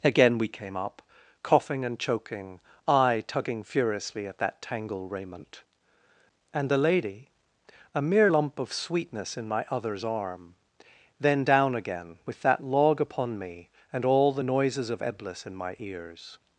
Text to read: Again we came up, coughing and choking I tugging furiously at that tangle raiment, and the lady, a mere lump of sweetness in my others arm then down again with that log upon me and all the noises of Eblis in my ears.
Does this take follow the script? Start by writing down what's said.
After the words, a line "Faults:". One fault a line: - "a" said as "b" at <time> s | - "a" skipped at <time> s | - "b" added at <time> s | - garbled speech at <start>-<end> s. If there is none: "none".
Again we came up, coughing and choking I tugging furiously at that tangle raiment, and the lady, a mere lump of sweetness in my others arm then down again with that log upon me and all the noises of Eblis in my ears.
Faults:
none